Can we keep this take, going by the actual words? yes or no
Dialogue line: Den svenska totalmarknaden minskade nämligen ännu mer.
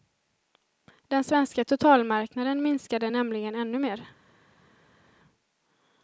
yes